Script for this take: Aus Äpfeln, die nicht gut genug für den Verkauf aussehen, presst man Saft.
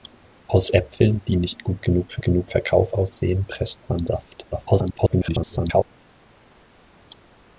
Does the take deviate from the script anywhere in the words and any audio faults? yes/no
yes